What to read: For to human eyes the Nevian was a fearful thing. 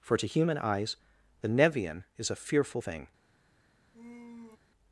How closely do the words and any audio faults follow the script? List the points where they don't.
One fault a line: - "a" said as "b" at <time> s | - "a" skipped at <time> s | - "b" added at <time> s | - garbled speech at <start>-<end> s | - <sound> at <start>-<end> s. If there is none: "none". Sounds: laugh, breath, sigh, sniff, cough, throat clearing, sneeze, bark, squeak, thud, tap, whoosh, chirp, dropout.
- "was" said as "is" at 2.2 s
- sigh at 3.9-4.6 s